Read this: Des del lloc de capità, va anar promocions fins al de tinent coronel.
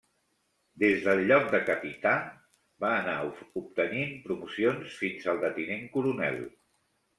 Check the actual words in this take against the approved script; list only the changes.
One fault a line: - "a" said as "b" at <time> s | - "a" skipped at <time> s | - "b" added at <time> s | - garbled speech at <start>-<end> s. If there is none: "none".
- "obtenint" added at 3.6 s